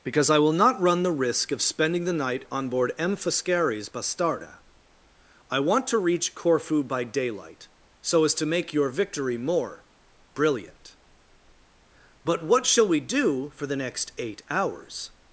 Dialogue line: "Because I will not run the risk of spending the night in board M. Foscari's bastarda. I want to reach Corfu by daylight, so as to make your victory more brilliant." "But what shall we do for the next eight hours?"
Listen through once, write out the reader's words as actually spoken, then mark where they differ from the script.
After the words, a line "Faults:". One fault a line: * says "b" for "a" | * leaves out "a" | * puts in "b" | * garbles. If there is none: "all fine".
"Because I will not run the risk of spending the night on board M. Foscari's bastarda. I want to reach Corfu by daylight, so as to make your victory more brilliant." "But what shall we do for the next eight hours?"
Faults:
* says "on" for "in"